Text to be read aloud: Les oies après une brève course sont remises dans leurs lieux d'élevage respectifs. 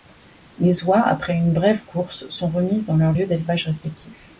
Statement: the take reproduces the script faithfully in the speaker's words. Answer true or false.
true